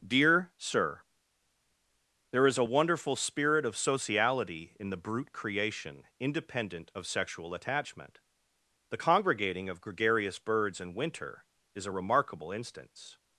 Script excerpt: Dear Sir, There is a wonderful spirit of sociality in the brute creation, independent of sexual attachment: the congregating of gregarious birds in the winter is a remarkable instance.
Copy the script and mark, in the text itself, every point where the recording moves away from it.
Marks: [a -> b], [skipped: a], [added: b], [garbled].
Dear Sir, There is a wonderful spirit of sociality in the brute creation, independent of sexual attachment: the congregating of gregarious birds in [skipped: the] winter is a remarkable instance.